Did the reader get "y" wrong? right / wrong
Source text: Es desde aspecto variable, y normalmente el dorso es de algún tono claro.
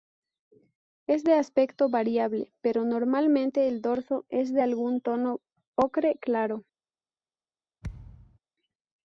wrong